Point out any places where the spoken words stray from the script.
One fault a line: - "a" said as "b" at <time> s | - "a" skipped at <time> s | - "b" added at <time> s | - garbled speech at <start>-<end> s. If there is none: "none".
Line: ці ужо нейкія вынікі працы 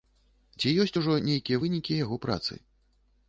- "ёсць" added at 0.8 s
- "яго" added at 2.0 s